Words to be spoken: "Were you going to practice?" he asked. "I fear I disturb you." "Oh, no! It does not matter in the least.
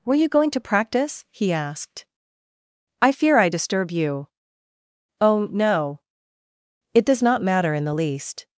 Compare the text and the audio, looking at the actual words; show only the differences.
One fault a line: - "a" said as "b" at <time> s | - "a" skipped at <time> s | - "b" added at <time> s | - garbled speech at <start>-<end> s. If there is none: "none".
none